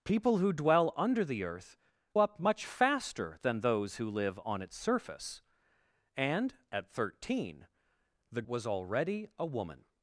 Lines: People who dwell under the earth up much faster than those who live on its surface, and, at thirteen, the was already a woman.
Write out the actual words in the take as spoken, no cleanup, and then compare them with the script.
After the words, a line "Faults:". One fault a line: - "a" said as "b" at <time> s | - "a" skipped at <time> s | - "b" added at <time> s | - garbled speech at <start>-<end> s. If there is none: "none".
People who dwell under the earth up much faster than those who live on its surface, and, at thirteen, the was already a woman.
Faults:
none